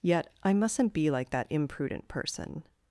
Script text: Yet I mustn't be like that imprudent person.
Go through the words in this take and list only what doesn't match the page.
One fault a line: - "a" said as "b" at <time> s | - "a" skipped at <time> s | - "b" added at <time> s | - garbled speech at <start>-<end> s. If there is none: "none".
none